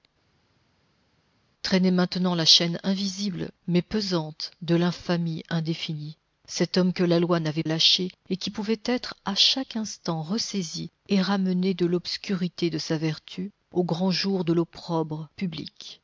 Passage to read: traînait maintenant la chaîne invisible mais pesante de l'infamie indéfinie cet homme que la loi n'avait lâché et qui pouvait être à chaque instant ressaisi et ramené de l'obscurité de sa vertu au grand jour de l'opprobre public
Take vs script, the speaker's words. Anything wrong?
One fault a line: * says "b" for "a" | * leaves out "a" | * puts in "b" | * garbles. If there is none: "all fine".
all fine